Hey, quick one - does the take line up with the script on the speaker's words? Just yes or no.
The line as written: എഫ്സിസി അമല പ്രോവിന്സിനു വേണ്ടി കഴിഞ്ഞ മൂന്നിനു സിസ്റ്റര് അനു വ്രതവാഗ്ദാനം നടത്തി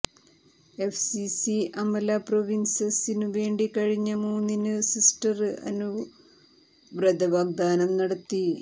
yes